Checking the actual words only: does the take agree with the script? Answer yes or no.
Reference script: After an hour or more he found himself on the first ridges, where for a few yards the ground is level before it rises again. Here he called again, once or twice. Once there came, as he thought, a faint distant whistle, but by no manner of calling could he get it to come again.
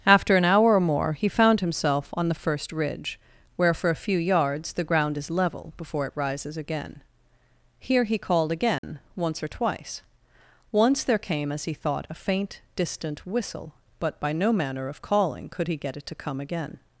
no